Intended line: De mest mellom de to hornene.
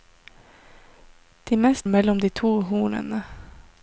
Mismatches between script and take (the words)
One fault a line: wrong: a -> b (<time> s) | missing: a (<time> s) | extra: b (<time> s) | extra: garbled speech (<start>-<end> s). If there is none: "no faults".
no faults